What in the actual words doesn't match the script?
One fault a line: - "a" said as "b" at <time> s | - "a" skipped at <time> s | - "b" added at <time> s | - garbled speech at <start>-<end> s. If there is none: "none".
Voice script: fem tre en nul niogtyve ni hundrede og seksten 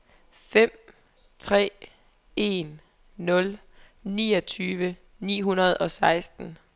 none